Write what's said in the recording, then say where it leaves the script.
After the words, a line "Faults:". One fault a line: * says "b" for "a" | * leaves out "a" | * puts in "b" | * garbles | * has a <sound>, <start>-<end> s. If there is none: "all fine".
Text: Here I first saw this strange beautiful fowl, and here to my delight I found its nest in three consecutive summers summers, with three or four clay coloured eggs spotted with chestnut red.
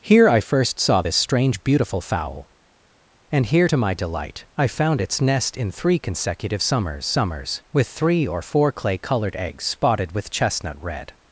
Here I first saw this strange beautiful fowl, and here to my delight I found its nest in three consecutive summers summers, with three or four clay coloured eggs spotted with chestnut red.
Faults:
all fine